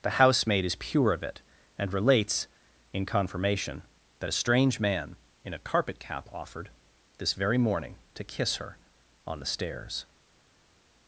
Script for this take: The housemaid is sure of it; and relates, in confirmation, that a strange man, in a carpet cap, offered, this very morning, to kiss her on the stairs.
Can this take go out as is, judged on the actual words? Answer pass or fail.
fail